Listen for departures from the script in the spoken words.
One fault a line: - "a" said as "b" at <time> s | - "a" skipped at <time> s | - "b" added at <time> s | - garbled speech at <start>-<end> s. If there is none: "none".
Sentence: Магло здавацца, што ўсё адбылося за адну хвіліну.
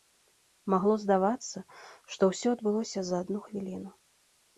none